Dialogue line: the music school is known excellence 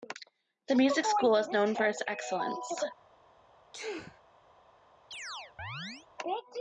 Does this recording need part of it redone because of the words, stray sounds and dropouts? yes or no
yes